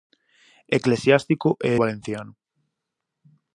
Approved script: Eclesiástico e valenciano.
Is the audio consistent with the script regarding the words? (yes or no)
yes